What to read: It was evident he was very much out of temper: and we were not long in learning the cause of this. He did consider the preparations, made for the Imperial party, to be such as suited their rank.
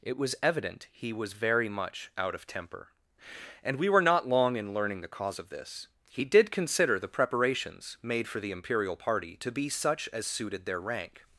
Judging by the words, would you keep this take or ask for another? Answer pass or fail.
pass